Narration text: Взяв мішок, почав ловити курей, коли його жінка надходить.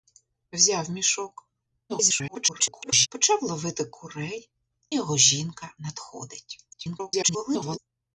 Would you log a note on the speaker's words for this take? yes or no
yes